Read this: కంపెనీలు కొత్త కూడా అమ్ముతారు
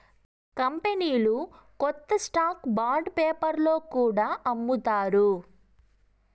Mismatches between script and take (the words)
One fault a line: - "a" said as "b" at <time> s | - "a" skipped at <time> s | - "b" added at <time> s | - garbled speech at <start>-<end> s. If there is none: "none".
- "స్టాక్ బాండ్ పేపర్లో" added at 2.2 s